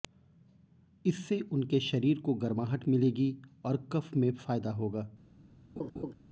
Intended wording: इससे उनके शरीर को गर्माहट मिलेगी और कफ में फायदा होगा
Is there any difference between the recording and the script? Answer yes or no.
no